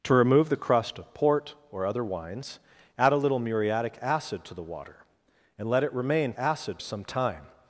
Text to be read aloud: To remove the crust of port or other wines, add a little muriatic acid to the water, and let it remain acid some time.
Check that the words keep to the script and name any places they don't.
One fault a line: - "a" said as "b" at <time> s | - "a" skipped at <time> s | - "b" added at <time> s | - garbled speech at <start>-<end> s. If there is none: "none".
none